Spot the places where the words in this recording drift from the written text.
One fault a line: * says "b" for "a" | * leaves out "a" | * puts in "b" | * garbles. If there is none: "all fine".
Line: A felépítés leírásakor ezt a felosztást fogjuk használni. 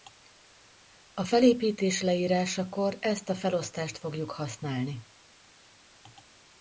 all fine